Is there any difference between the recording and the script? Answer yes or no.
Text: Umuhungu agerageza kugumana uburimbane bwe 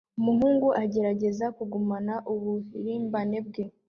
no